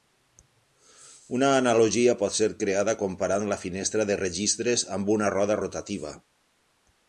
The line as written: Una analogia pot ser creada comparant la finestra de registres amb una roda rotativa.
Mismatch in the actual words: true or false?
false